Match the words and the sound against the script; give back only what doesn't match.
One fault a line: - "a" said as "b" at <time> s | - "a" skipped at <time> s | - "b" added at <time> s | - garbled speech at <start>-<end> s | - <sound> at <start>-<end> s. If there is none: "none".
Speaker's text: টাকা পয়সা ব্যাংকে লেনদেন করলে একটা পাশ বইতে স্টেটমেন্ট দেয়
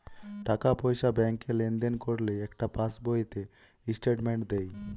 none